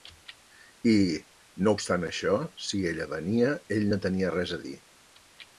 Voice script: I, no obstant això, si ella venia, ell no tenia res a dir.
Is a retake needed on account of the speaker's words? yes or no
no